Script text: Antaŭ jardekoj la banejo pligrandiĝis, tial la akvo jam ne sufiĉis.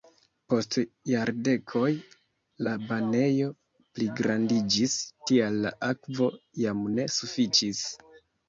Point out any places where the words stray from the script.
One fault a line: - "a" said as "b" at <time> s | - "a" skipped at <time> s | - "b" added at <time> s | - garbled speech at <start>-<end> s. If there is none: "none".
- "Antaŭ" said as "Post" at 0.5 s